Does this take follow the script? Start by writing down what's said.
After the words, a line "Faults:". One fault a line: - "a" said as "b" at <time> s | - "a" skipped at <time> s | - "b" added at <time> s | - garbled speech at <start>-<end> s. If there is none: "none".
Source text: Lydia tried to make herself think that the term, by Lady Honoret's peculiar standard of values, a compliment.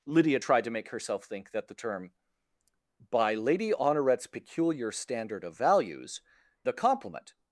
Lydia tried to make herself think that the term, by Lady Honoret's peculiar standard of values, a compliment.
Faults:
none